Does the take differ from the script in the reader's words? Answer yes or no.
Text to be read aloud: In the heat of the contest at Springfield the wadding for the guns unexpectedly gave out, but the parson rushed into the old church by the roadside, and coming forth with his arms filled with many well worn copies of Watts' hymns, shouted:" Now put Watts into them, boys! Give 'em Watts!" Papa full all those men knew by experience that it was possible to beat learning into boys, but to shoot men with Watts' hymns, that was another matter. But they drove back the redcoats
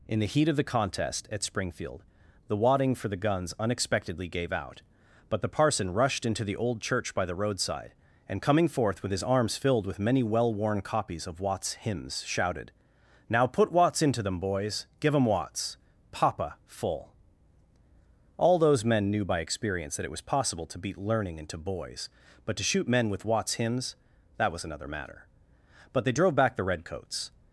no